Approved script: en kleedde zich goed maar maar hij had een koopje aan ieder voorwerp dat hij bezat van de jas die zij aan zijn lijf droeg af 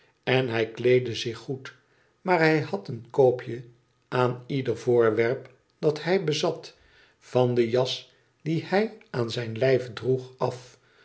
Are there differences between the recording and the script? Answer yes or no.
yes